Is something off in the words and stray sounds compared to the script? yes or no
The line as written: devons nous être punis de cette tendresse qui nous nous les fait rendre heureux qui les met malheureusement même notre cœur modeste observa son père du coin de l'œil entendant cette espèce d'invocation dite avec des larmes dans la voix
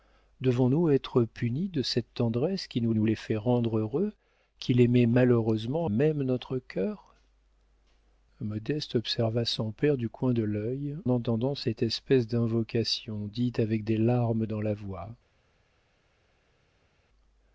no